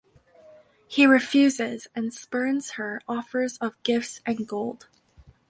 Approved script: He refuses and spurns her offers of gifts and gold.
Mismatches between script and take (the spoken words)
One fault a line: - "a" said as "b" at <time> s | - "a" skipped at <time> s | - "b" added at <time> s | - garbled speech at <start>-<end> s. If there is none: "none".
none